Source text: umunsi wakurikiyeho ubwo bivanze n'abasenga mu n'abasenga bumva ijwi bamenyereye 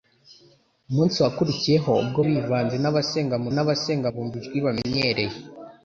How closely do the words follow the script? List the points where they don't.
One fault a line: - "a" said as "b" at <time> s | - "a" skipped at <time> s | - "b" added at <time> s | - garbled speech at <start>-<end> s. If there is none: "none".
none